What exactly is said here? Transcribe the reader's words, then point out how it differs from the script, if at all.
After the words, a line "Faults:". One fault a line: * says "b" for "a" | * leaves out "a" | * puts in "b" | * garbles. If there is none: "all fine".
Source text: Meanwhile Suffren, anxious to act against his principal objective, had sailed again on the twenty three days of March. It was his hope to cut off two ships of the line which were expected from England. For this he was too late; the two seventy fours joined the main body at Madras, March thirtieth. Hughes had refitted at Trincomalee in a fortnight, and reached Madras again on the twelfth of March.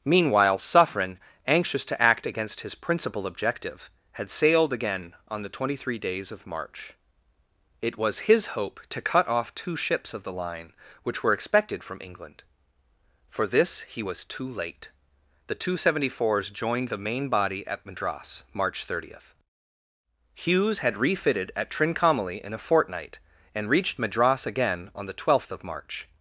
Meanwhile Suffren, anxious to act against his principal objective, had sailed again on the twenty three days of March. It was his hope to cut off two ships of the line which were expected from England. For this he was too late; the two seventy fours joined the main body at Madras, March thirtieth. Hughes had refitted at Trincomalee in a fortnight, and reached Madras again on the twelfth of March.
Faults:
all fine